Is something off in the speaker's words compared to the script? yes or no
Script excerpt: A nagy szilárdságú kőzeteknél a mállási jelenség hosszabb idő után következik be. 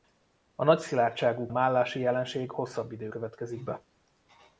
yes